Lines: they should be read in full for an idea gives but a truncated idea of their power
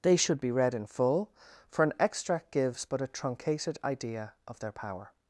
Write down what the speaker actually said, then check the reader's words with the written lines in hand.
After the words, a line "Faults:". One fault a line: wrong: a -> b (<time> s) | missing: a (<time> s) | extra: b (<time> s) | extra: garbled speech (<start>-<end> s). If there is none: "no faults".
they should be read in full for an extract gives but a truncated idea of their power
Faults:
wrong: idea -> extract (2.0 s)